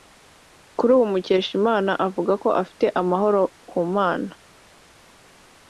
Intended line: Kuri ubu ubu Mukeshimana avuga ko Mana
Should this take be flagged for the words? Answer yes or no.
yes